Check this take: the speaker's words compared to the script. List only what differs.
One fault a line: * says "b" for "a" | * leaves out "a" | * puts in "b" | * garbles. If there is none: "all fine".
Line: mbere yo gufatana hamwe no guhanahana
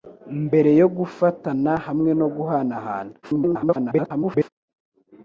* garbles